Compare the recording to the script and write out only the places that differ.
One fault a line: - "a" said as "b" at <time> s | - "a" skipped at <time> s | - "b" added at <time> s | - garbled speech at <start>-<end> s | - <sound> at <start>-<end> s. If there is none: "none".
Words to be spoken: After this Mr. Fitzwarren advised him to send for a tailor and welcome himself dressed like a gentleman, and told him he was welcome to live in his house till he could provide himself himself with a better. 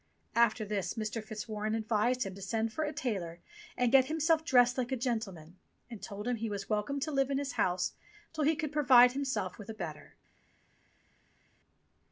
- "welcome" said as "get" at 3.9 s
- "himself" skipped at 9.6 s